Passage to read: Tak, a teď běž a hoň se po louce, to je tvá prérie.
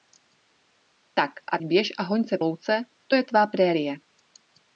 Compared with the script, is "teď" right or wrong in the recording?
wrong